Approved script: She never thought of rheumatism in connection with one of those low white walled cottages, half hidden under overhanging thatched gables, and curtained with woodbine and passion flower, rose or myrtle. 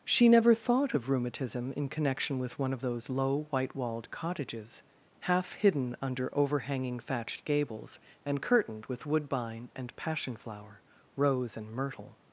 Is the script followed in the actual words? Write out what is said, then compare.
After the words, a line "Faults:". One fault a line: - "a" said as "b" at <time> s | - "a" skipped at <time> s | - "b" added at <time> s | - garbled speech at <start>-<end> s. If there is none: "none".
She never thought of rheumatism in connection with one of those low white walled cottages, half hidden under overhanging thatched gables, and curtained with woodbine and passion flower, rose and myrtle.
Faults:
- "or" said as "and" at 11.6 s